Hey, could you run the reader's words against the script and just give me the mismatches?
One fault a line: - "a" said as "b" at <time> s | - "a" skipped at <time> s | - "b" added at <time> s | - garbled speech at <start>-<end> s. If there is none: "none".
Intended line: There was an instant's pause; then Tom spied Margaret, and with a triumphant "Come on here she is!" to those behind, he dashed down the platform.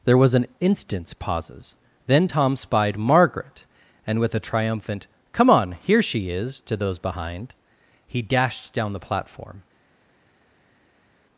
- "pause" said as "pauses" at 1.1 s